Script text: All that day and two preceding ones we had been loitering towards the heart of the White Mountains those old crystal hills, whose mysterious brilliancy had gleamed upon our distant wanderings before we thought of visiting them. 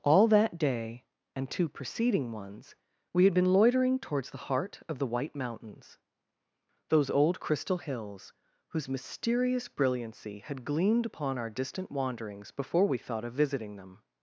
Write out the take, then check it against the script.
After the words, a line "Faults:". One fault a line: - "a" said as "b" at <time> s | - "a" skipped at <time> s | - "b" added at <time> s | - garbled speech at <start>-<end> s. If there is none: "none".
All that day and two preceding ones we had been loitering towards the heart of the White Mountains those old crystal hills, whose mysterious brilliancy had gleamed upon our distant wanderings before we thought of visiting them.
Faults:
none